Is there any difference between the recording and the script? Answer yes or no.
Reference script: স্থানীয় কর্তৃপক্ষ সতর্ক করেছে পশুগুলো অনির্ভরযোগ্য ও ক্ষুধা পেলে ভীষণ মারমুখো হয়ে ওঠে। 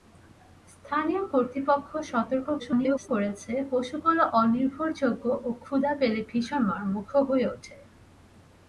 yes